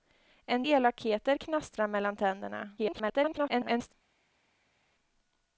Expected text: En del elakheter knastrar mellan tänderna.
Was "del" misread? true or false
true